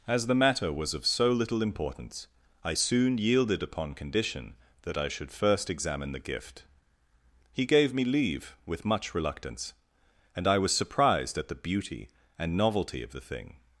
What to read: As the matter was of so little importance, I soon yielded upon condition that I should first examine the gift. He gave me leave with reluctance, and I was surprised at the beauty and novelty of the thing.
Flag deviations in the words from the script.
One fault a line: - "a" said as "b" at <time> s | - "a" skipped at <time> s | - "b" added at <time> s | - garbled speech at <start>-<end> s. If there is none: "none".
- "much" added at 8.8 s